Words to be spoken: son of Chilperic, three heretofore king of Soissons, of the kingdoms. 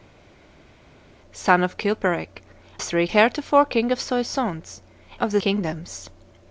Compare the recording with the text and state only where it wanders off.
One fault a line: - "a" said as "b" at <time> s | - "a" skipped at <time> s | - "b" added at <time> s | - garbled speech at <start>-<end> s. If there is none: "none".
none